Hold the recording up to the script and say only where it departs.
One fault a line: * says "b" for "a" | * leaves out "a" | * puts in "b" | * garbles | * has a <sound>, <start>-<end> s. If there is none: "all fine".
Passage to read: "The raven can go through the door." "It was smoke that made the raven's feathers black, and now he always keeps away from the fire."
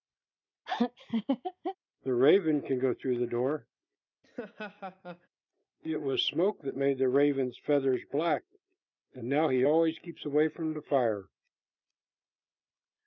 * has a laugh, 0.7-1.8 s
* has a laugh, 4.2-5.3 s